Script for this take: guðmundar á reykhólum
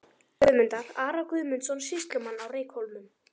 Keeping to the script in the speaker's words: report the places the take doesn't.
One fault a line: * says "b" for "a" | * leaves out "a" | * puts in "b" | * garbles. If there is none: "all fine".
* puts in "ara guðmundsson sýslumann"